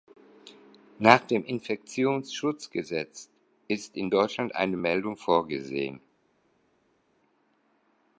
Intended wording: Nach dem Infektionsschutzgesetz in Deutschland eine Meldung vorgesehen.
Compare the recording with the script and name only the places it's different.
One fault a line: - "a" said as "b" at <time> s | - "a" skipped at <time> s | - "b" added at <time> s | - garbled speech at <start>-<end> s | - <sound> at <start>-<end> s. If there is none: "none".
- "ist" added at 3.7 s